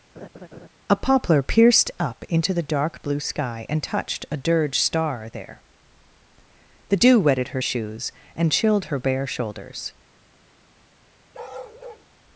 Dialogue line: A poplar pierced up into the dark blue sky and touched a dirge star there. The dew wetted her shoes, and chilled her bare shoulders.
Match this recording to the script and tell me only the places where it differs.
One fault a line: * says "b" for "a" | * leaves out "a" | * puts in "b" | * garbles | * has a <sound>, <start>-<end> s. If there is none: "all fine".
* has a laugh, 0.1-0.7 s
* has a bark, 11.3-12.1 s